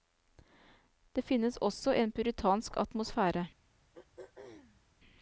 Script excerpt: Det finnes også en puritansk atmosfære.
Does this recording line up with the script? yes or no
yes